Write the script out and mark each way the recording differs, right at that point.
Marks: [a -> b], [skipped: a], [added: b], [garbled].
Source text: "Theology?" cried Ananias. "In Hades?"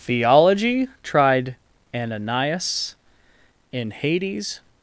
"Theology?" [cried -> tried] Ananias. "In Hades?"